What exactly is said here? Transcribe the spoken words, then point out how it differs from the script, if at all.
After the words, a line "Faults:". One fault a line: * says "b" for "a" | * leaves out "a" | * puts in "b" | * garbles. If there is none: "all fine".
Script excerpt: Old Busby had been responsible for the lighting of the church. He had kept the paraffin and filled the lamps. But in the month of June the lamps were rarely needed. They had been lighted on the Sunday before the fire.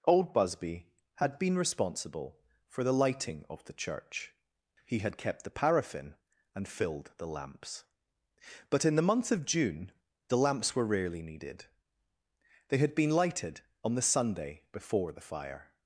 Old Busby had been responsible for the lighting of the church. He had kept the paraffin and filled the lamps. But in the month of June the lamps were rarely needed. They had been lighted on the Sunday before the fire.
Faults:
all fine